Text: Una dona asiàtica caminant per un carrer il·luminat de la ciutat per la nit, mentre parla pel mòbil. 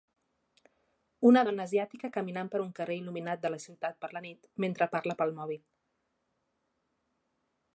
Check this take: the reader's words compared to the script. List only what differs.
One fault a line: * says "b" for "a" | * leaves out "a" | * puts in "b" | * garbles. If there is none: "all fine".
all fine